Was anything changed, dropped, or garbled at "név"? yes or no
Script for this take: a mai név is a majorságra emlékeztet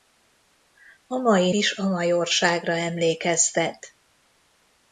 yes